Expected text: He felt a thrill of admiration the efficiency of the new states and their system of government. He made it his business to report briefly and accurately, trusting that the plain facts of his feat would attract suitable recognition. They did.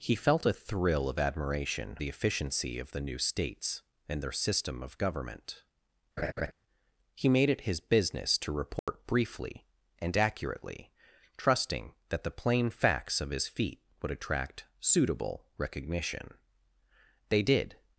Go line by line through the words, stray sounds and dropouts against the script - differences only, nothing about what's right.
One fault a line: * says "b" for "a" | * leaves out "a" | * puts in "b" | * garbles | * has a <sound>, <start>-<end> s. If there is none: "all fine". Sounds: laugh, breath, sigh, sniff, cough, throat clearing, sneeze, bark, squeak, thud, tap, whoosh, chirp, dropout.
* has a laugh, 6.2-6.5 s
* has a dropout, 8.8-8.9 s